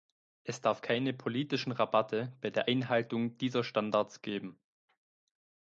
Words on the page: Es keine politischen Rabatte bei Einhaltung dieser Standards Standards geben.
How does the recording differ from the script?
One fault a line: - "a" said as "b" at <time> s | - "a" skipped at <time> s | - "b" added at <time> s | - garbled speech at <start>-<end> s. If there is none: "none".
- "darf" added at 0.6 s
- "der" added at 2.5 s
- "Standards" skipped at 4.2 s